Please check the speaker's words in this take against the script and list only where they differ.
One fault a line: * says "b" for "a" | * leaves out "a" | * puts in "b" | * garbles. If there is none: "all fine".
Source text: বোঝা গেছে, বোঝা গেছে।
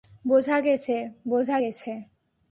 all fine